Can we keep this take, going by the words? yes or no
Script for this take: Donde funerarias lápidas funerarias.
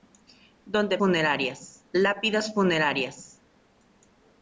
yes